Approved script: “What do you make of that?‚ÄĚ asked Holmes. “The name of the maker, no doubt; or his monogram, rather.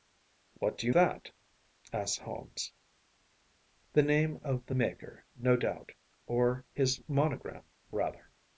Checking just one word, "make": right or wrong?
wrong